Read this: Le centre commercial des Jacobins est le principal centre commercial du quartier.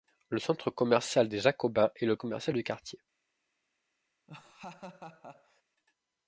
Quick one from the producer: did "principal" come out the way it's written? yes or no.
no